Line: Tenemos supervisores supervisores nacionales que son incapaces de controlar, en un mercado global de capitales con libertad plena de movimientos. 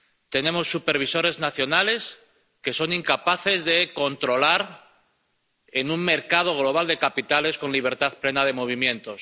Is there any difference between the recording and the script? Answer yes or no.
yes